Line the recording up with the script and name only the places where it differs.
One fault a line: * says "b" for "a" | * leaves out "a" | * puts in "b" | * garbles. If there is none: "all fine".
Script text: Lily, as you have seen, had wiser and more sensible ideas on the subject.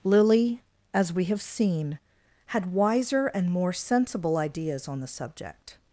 * says "we" for "you"